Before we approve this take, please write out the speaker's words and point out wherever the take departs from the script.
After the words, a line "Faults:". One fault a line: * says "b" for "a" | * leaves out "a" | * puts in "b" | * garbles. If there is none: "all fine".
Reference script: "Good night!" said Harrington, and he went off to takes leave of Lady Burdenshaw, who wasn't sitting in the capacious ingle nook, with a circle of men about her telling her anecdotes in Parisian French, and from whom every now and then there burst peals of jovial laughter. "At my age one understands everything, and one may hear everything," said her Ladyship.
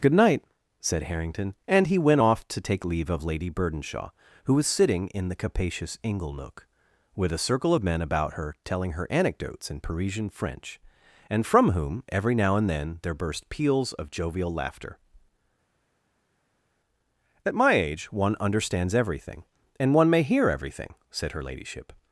"Good night!" said Harrington, and he went off to take leave of Lady Burdenshaw, who was sitting in the capacious ingle nook, with a circle of men about her telling her anecdotes in Parisian French, and from whom every now and then there burst peals of jovial laughter. "At my age one understands everything, and one may hear everything," said her Ladyship.
Faults:
* says "take" for "takes"
* says "was" for "wasn't"